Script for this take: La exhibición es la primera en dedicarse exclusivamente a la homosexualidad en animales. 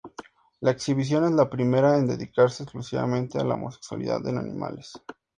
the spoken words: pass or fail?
pass